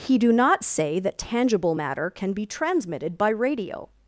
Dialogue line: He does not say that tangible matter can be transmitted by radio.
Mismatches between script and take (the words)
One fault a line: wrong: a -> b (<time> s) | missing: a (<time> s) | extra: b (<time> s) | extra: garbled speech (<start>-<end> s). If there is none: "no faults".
wrong: does -> do (0.2 s)